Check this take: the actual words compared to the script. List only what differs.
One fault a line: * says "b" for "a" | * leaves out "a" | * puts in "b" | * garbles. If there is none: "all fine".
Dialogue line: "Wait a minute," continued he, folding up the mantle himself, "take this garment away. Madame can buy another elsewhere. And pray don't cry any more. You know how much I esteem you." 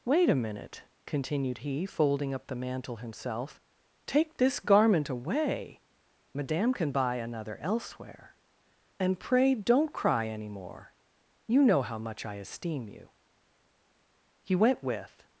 * puts in "He went with"